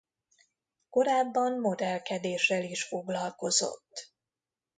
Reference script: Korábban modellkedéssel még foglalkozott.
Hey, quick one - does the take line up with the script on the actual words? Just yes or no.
no